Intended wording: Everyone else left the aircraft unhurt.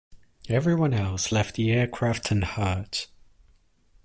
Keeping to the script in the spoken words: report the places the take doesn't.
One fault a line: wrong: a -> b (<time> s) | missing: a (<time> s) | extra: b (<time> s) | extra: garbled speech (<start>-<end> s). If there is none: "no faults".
no faults